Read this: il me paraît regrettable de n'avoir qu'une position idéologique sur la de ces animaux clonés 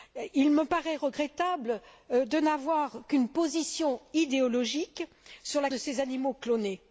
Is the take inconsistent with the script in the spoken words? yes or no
no